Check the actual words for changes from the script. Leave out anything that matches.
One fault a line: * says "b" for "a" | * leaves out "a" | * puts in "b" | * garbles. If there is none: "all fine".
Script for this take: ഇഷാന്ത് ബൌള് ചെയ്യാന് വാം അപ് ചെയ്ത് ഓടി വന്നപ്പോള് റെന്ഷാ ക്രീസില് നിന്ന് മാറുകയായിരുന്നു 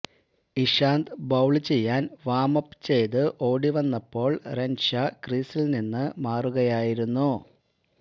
all fine